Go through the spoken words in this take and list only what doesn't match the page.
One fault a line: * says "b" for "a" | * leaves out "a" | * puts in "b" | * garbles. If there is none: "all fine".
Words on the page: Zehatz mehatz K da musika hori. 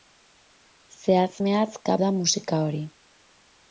all fine